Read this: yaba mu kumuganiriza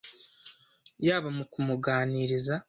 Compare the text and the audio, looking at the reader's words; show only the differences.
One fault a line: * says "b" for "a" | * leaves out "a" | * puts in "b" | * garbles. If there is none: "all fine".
all fine